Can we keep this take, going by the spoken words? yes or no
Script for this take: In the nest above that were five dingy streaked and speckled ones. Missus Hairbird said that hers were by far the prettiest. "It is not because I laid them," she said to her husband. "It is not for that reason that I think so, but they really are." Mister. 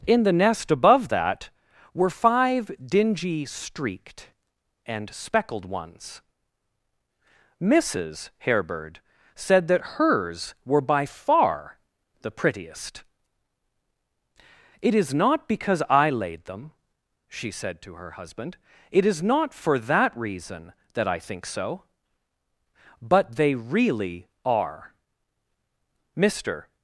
yes